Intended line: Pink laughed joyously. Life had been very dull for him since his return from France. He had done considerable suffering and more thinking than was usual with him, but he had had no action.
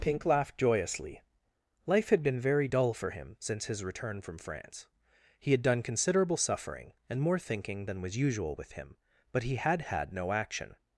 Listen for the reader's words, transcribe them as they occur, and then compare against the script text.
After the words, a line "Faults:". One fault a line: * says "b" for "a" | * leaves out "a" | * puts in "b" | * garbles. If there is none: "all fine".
Pink laughed joyously. Life had been very dull for him since his return from France. He had done considerable suffering and more thinking than was usual with him, but he had had no action.
Faults:
all fine